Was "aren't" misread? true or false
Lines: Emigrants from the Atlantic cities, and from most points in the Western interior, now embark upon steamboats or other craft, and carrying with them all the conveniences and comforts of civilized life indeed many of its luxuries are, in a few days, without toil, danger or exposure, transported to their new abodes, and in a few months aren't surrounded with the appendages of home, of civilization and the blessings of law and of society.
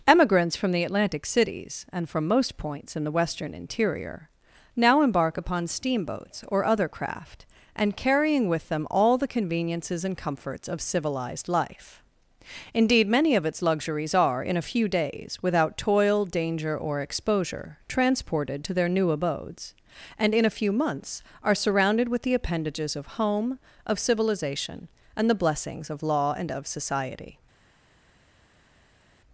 true